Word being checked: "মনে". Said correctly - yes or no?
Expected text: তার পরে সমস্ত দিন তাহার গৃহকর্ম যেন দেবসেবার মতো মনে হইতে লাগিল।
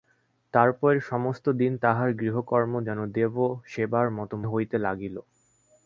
no